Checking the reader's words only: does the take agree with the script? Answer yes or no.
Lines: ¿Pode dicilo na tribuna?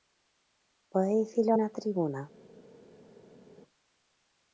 yes